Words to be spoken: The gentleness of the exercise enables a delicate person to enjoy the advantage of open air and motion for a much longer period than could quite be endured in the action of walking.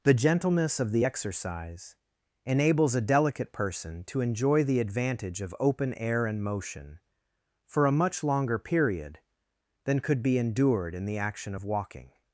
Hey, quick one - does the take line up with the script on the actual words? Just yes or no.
no